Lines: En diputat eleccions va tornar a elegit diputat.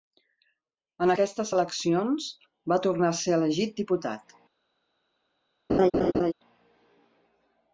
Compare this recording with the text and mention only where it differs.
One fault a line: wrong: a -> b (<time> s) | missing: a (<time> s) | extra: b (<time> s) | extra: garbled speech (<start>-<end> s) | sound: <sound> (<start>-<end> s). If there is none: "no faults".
wrong: diputat -> aquestes (1.1 s)
extra: ser (3.2 s)
sound: laugh (5.7-6.3 s)